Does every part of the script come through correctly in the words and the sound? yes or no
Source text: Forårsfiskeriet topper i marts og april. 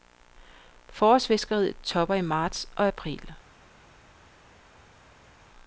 yes